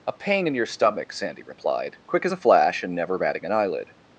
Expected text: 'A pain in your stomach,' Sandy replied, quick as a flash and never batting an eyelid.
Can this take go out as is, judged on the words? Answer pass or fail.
pass